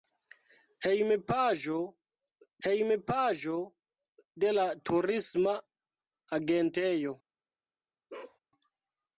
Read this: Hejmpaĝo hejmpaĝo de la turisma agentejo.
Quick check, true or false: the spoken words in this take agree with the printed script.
true